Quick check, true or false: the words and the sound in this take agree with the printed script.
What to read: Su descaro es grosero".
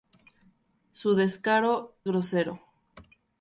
false